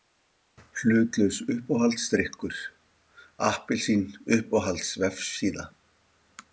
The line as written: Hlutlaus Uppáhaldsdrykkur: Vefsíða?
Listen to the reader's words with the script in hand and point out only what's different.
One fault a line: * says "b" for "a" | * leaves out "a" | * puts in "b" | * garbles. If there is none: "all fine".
* puts in "Appelsín Uppáhalds"